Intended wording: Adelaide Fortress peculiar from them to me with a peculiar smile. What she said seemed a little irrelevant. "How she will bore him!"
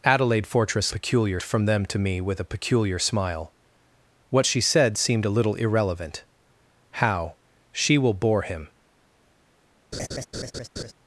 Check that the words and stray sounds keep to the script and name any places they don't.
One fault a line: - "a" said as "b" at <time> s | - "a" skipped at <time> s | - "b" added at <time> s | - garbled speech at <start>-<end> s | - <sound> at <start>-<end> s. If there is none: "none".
- laugh at 9.9-10.9 s